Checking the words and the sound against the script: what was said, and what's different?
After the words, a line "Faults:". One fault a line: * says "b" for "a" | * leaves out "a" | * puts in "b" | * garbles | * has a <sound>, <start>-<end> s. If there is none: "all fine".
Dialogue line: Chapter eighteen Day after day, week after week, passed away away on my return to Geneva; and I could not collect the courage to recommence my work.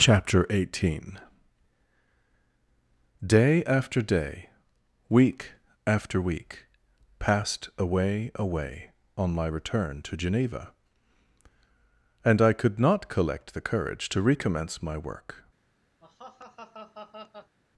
Chapter eighteen Day after day, week after week, passed away away on my return to Geneva; and I could not collect the courage to recommence my work.
Faults:
* has a laugh, 16.0-17.6 s